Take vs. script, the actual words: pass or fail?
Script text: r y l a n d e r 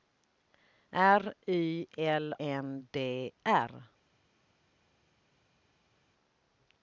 fail